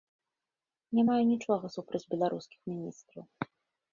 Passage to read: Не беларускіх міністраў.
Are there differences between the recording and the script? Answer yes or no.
yes